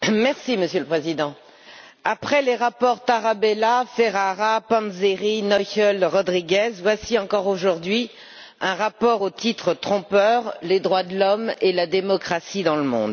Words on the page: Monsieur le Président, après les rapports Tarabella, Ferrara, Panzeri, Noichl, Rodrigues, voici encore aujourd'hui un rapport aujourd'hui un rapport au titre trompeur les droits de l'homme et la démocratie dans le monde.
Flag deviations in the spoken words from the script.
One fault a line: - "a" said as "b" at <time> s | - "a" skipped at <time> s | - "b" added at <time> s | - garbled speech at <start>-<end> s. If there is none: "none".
- "aujourd'hui un rapport" skipped at 9.2 s